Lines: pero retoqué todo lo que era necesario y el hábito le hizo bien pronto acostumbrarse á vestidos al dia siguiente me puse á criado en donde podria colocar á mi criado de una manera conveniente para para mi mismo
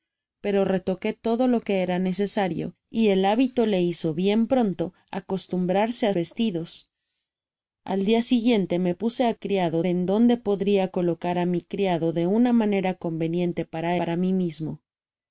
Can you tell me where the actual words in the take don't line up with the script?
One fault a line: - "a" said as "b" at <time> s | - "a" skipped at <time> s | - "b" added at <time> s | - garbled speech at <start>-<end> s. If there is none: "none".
none